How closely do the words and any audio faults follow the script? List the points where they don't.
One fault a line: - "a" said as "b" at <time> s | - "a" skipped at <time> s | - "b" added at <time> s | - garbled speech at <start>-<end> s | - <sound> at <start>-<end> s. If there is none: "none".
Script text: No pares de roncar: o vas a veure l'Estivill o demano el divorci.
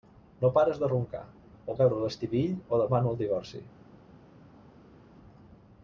- "vas" skipped at 1.8 s